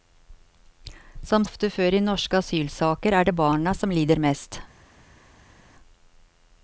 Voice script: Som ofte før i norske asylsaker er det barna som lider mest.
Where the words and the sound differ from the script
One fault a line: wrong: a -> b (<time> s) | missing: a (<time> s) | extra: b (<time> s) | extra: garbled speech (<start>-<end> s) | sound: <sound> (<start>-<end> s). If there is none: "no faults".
no faults